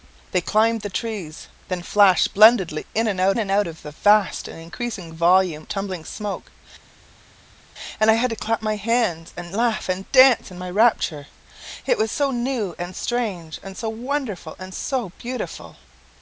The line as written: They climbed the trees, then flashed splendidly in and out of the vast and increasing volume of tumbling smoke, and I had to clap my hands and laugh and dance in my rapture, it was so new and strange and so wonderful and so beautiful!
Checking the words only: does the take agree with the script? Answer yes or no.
no